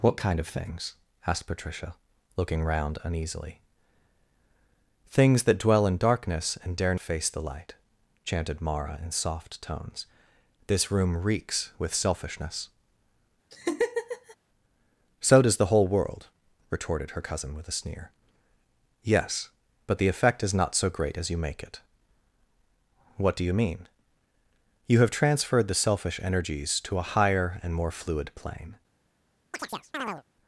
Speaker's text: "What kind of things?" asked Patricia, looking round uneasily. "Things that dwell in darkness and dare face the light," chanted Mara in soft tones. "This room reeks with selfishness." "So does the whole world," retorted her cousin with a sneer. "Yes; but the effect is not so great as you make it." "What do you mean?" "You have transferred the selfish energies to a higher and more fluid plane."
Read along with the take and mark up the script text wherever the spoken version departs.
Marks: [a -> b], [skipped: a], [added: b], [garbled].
"What kind of things?" asked Patricia, looking round uneasily. "Things that dwell in darkness and dare face the light," chanted Mara in soft tones. "This room reeks with selfishness." "So does the whole world," retorted her cousin with a sneer. "Yes; but the effect is not so great as you make it." "What do you mean?" "You have transferred the selfish energies to a higher and more fluid plane."